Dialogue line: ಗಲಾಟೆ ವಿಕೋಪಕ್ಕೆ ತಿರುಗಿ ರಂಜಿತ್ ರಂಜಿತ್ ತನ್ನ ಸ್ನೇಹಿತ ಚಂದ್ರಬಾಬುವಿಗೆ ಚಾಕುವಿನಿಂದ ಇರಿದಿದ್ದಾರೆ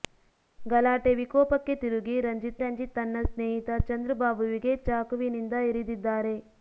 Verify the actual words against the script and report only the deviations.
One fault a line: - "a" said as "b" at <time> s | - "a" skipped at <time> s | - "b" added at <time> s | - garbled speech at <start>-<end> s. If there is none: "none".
none